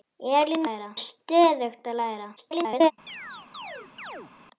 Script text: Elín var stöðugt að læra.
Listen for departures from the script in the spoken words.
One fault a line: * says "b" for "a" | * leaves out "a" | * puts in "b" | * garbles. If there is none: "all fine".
* says "læra" for "var"
* garbles